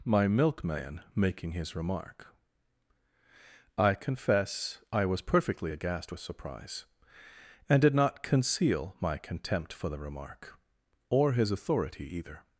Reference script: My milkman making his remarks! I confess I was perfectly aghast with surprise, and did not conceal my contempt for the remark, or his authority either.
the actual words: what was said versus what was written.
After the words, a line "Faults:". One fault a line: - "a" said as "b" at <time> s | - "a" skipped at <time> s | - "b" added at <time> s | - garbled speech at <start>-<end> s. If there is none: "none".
My milkman making his remark! I confess I was perfectly aghast with surprise, and did not conceal my contempt for the remark, or his authority either.
Faults:
- "remarks" said as "remark" at 1.8 s